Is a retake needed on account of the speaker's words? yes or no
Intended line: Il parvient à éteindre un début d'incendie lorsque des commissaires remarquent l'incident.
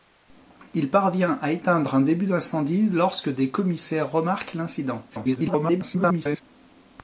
yes